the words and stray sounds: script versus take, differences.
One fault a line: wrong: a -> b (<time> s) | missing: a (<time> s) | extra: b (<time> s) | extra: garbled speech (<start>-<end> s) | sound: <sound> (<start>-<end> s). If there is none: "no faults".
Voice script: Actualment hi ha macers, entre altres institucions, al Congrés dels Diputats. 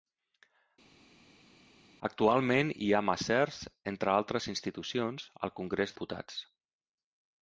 missing: dels (6.0 s)